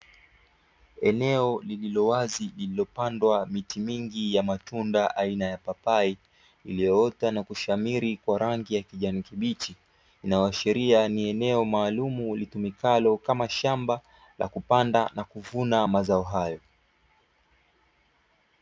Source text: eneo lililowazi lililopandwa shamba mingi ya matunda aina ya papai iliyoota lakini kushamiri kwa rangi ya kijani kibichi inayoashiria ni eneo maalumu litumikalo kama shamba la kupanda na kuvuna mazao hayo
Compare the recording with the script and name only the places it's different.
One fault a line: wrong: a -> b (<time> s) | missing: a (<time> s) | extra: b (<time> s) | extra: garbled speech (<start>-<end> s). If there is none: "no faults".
wrong: shamba -> miti (3.5 s)
wrong: lakini -> na (7.3 s)